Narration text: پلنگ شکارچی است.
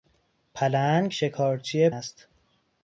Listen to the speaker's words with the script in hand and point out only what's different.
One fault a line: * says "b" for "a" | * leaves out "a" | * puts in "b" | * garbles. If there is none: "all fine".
all fine